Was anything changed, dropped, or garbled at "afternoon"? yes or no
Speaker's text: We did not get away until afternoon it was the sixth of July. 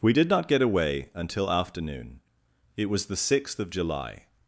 no